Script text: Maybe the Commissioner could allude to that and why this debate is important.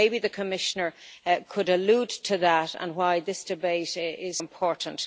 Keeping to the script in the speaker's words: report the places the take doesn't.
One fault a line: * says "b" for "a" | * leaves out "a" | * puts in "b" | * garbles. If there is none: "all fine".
all fine